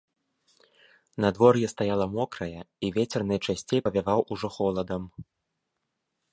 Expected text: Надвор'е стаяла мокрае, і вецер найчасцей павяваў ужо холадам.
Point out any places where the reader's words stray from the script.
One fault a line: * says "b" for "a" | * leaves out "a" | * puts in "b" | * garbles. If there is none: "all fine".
all fine